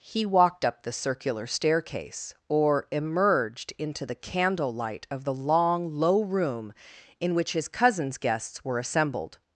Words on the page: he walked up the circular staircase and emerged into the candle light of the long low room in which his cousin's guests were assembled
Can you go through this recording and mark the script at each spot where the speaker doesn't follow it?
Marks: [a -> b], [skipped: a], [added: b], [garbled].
he walked up the circular staircase [and -> or] emerged into the candle light of the long low room in which his cousin's guests were assembled